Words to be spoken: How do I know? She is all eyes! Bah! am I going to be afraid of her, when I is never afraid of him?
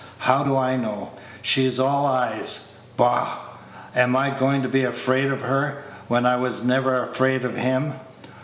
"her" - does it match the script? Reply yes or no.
yes